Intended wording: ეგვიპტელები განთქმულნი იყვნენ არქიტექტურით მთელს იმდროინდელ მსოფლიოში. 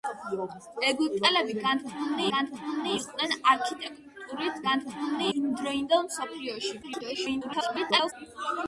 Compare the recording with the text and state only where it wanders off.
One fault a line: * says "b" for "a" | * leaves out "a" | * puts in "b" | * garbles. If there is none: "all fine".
* puts in "განთქმულნი"
* says "განთქმულნი" for "მთელს"
* garbles